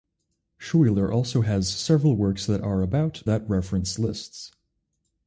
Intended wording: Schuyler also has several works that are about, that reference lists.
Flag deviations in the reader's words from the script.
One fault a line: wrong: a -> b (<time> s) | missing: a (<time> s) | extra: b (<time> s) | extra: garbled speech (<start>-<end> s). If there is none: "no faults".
no faults